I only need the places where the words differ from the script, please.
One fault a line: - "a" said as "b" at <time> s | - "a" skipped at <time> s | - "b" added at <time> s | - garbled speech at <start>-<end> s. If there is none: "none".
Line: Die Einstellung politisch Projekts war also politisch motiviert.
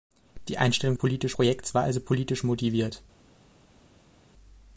none